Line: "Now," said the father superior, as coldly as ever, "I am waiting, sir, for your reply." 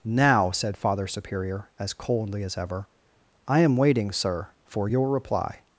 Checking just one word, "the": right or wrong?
wrong